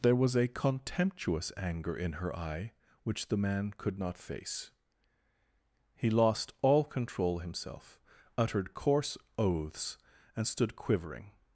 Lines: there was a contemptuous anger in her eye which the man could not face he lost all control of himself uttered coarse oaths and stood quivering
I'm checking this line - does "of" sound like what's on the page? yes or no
no